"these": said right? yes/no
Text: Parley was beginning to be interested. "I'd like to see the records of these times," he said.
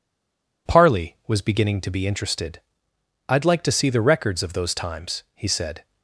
no